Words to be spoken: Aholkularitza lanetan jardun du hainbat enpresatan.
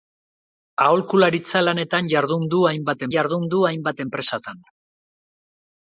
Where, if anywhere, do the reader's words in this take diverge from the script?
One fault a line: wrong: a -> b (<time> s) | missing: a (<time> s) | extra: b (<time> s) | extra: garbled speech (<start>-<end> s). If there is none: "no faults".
extra: jardun du hainbat (3.1 s)